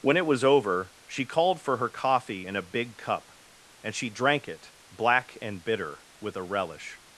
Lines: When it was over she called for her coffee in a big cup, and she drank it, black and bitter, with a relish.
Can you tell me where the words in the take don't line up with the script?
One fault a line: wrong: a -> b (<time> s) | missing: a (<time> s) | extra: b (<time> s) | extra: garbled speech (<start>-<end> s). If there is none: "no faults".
no faults